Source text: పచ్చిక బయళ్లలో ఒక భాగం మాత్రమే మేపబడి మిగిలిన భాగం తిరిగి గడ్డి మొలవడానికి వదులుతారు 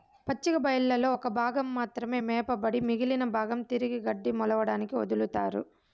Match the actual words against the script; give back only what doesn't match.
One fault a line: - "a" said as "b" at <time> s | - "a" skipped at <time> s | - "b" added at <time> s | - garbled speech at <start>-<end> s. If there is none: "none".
none